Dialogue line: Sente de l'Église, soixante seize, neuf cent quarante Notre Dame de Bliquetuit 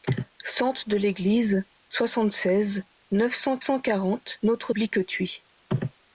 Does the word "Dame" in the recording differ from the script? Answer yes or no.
yes